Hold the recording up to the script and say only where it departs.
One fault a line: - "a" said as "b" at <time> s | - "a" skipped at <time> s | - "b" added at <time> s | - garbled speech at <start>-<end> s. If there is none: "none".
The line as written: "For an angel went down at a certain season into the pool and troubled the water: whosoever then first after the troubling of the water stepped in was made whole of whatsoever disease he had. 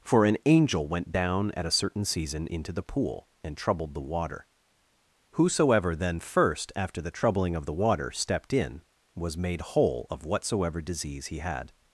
none